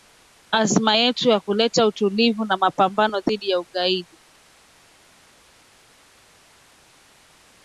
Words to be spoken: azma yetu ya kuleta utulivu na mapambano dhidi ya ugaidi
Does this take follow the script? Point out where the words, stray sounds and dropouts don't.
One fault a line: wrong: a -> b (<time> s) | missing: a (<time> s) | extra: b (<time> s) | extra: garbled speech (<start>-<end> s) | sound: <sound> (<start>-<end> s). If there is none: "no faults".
no faults